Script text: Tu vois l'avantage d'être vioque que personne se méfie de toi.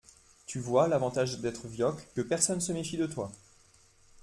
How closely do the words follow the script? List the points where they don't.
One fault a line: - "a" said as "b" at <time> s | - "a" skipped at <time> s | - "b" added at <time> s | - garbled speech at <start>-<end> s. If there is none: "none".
none